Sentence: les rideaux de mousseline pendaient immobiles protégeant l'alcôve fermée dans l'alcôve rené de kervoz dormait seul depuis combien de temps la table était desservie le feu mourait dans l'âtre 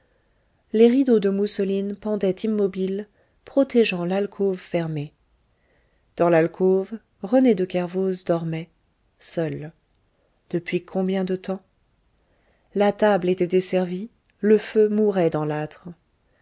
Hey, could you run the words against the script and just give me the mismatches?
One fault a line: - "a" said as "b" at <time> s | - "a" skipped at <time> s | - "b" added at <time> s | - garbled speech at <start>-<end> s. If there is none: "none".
none